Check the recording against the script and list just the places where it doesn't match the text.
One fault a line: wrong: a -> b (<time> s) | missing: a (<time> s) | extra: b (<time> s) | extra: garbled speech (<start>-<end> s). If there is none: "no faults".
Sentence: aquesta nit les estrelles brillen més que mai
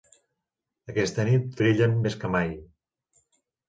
missing: les estrelles (1.6 s)